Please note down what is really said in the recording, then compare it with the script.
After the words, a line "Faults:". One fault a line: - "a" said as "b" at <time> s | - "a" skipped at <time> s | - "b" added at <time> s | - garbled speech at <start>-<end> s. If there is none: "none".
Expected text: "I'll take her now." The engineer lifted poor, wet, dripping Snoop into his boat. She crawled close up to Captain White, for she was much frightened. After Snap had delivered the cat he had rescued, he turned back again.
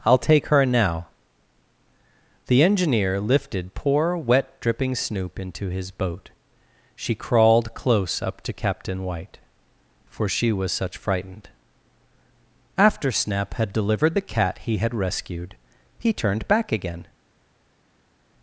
"I'll take her now." The engineer lifted poor, wet, dripping Snoop into his boat. She crawled close up to Captain White, for she was such frightened. After Snap had delivered the cat he had rescued, he turned back again.
Faults:
- "much" said as "such" at 10.7 s